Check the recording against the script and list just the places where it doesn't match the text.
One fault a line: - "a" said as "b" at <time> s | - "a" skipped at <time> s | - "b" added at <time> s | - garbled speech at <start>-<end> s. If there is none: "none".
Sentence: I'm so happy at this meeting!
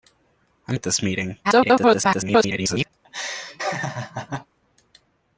- "so happy" skipped at 0.8 s
- garbled speech at 1.4-2.9 s